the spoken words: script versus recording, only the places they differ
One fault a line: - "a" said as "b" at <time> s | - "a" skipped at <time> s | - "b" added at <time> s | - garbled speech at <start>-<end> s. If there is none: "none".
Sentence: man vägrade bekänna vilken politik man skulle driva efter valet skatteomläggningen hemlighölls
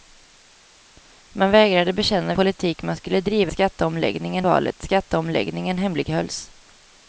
- "vilken" skipped at 2.4 s
- "efter" said as "skatteomläggningen" at 3.5 s